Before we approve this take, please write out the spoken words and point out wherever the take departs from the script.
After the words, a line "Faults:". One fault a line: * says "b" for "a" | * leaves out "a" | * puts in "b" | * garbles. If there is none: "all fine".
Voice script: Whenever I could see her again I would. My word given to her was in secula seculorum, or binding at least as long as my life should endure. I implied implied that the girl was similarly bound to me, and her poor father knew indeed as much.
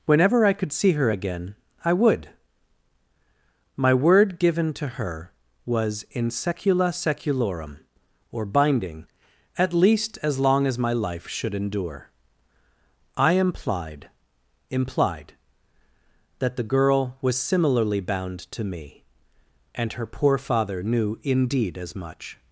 Whenever I could see her again I would. My word given to her was in secula seculorum, or binding at least as long as my life should endure. I implied implied that the girl was similarly bound to me, and her poor father knew indeed as much.
Faults:
all fine